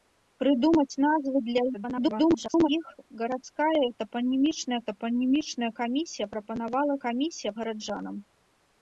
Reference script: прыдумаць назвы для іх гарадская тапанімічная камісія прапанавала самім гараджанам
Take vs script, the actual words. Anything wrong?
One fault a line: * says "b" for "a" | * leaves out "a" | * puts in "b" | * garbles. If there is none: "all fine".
* garbles
* puts in "тапанімічная"
* says "камісія" for "самім"